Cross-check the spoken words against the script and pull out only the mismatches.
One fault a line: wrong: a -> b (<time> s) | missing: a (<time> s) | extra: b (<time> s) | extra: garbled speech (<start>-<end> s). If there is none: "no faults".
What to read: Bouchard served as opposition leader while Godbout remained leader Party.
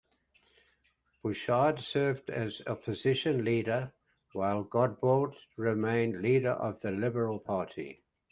extra: of the Liberal (6.5 s)